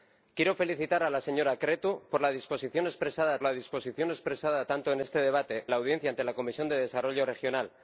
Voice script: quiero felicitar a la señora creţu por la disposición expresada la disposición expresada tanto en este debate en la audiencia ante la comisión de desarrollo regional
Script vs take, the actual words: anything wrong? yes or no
no